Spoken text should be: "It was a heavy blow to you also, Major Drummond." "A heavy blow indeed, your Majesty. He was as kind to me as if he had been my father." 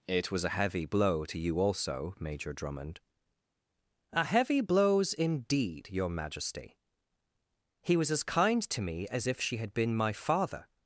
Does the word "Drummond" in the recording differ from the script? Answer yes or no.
no